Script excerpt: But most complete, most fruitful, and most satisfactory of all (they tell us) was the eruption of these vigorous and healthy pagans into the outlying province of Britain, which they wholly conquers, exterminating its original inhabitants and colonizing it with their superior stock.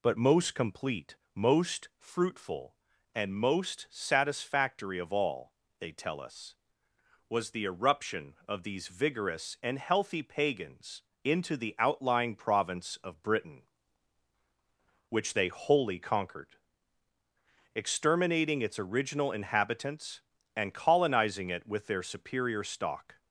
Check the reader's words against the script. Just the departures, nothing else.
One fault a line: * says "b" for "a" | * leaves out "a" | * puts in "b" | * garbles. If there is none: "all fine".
* says "conquered" for "conquers"